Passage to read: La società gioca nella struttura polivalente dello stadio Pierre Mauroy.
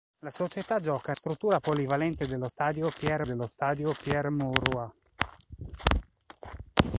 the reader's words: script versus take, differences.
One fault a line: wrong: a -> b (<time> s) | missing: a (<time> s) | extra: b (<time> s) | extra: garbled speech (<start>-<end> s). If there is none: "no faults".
missing: nella (1.1 s)
extra: dello stadio Pierre (3.2 s)